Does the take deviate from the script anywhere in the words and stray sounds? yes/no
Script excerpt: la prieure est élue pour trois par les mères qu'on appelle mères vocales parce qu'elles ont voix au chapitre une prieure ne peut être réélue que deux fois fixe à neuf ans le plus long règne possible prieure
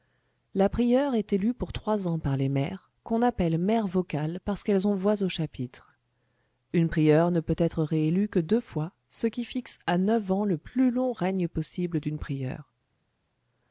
yes